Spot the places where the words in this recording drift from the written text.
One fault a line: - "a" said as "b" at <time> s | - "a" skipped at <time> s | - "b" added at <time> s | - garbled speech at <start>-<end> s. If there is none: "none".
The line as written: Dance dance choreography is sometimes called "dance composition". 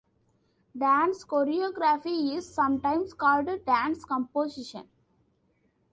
- "dance" skipped at 1.2 s